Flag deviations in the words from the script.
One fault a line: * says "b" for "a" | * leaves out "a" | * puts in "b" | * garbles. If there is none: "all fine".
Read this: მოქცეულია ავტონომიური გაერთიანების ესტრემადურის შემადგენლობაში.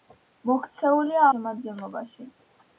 * leaves out "ავტონომიური გაერთიანების ესტრემადურის"